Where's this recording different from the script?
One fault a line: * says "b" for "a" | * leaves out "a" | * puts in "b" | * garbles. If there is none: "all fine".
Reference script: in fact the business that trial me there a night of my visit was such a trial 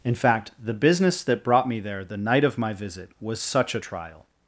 * says "brought" for "trial"
* says "the" for "a"